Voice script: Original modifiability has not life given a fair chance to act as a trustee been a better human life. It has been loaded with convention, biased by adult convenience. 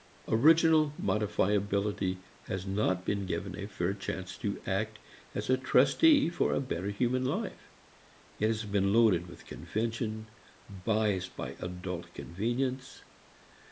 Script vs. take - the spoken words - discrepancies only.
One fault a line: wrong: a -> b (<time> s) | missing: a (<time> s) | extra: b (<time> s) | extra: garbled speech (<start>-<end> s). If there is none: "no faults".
wrong: life -> been (3.0 s)
wrong: been -> for (6.3 s)